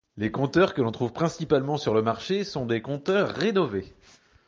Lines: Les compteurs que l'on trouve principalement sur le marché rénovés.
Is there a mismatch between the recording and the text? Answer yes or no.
yes